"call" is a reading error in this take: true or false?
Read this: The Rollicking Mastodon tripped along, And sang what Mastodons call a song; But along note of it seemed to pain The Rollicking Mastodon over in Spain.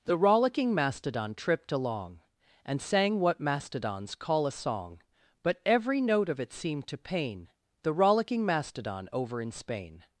false